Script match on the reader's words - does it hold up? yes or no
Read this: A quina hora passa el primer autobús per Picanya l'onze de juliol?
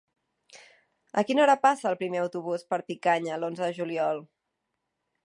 yes